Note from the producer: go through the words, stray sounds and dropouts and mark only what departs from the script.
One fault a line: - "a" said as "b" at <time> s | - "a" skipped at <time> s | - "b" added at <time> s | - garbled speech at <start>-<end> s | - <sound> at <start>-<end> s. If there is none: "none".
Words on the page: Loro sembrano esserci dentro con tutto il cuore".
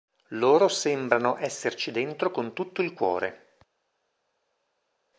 none